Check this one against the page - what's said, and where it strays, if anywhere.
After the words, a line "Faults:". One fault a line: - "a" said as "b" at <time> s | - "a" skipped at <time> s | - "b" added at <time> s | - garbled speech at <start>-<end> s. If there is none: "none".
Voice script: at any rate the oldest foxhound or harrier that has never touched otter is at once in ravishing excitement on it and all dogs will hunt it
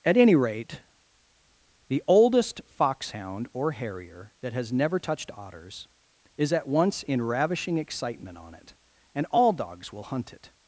at any rate the oldest foxhound or harrier that has never touched otters is at once in ravishing excitement on it and all dogs will hunt it
Faults:
- "otter" said as "otters" at 5.4 s